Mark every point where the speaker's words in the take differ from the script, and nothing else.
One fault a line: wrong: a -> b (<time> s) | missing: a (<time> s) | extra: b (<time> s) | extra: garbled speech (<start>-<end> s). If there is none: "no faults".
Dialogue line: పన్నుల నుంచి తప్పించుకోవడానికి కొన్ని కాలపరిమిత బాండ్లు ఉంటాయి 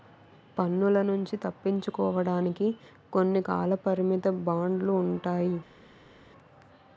no faults